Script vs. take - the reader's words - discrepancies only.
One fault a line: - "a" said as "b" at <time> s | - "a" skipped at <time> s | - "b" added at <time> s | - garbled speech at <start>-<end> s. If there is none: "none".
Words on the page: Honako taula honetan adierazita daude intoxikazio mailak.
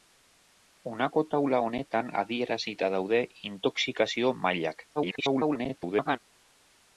- garbled speech at 5.0-6.2 s